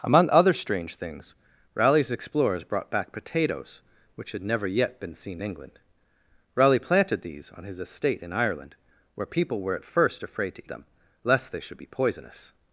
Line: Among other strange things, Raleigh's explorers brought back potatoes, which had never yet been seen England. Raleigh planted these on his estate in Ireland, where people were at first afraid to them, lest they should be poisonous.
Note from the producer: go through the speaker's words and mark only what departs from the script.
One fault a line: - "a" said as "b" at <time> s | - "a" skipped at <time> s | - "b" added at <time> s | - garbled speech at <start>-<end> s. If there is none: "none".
none